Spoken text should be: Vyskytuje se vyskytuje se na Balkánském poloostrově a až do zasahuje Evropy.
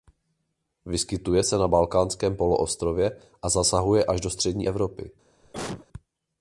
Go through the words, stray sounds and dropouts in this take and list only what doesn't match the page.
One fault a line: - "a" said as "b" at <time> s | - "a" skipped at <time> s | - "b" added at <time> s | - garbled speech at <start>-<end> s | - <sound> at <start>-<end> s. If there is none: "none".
- "vyskytuje se" skipped at 1.6 s
- "zasahuje" added at 3.5 s
- "zasahuje" said as "střední" at 4.3 s
- cough at 5.4-5.9 s